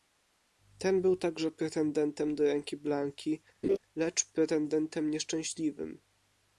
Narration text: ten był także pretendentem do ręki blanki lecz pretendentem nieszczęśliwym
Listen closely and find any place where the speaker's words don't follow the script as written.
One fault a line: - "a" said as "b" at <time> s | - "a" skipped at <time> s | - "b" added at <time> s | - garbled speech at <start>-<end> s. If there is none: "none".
none